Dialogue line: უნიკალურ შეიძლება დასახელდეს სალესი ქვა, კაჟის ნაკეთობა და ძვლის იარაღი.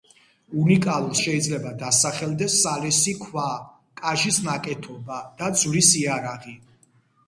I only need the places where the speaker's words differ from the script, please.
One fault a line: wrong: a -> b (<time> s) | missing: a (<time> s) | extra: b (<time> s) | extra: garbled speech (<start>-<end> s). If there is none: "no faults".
no faults